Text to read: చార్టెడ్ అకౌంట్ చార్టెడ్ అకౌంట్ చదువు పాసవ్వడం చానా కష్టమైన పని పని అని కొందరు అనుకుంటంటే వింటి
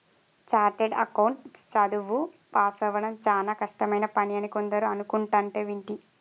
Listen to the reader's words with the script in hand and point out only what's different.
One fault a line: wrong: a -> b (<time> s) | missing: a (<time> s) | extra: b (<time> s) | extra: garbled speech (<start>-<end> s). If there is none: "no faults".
missing: చార్టెడ్ అకౌంట్ (1.4 s)
missing: పని (4.4 s)